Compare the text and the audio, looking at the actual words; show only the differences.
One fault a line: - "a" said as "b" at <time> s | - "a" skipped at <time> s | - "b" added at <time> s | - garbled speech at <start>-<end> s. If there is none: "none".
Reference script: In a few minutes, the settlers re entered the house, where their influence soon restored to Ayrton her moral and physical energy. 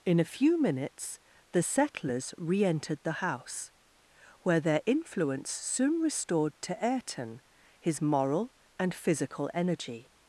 - "her" said as "his" at 7.8 s